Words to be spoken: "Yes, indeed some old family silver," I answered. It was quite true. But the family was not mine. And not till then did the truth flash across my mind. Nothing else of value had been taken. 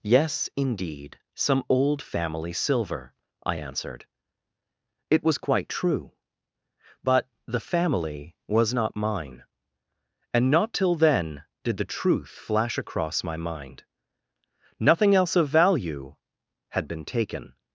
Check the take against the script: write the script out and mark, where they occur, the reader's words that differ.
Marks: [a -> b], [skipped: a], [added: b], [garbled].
"Yes, indeed some old family silver," I answered. It was quite true. But the family was not mine. And not till then did the truth flash across my mind. Nothing else of value had been taken.